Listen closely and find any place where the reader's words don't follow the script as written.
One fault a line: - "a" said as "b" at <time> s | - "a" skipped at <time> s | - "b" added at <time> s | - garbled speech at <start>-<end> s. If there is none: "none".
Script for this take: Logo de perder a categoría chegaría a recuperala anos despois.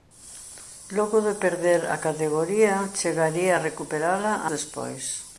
- "anos" skipped at 4.3 s